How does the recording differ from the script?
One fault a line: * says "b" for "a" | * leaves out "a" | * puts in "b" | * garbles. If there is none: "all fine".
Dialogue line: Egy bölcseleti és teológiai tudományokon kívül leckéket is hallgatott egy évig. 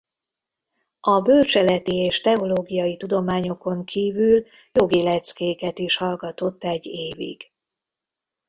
* says "A" for "Egy"
* puts in "jogi"